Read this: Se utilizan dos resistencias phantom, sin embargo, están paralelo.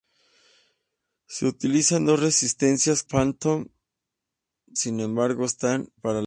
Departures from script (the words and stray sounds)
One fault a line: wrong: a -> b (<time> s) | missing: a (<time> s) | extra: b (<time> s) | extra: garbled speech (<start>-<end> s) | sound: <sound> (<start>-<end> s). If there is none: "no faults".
no faults